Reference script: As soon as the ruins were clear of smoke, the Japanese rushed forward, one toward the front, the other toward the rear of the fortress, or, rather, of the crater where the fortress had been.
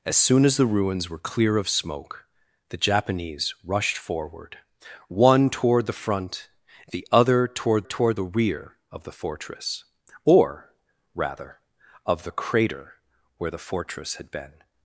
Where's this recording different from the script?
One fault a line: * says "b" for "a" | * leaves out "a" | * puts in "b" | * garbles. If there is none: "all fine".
* puts in "toward"